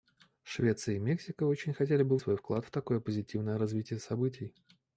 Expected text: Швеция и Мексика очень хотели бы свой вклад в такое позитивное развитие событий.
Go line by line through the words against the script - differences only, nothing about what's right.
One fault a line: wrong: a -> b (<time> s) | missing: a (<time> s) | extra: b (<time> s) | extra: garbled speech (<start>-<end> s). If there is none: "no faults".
no faults